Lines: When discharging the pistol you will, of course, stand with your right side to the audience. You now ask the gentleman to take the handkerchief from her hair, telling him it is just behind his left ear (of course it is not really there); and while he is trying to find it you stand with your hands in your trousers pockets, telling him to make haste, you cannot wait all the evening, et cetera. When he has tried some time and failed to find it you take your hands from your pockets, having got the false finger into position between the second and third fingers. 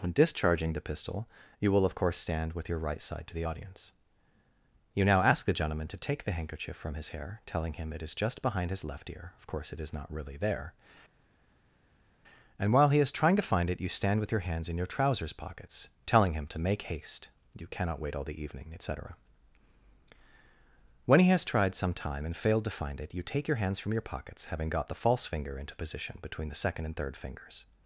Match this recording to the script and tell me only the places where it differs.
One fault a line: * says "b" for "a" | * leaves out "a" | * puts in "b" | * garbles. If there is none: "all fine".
* says "his" for "her"